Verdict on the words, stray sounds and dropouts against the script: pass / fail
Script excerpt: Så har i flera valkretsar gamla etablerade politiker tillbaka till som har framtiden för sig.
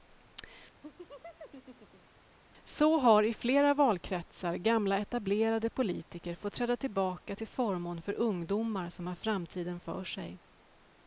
fail